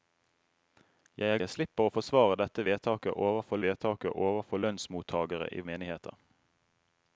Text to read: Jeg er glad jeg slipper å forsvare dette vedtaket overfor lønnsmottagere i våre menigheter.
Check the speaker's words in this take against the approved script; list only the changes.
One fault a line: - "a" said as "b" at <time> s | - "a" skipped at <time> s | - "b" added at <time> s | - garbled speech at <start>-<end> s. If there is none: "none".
- "glad" skipped at 1.4 s
- "vedtaket overfor" added at 3.7 s
- "våre" skipped at 5.6 s